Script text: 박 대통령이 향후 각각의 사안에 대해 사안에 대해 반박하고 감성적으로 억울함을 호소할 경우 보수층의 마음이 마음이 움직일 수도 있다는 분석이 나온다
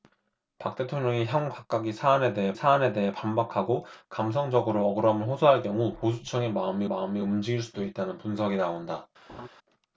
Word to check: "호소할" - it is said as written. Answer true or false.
true